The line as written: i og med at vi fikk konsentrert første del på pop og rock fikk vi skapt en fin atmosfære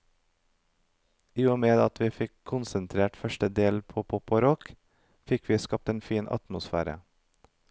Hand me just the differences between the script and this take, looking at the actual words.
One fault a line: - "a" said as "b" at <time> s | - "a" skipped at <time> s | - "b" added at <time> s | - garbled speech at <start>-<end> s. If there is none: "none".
none